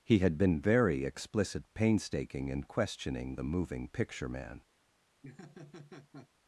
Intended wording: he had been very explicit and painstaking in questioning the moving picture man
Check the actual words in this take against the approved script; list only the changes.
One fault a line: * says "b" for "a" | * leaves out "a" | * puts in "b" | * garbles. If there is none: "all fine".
* leaves out "and"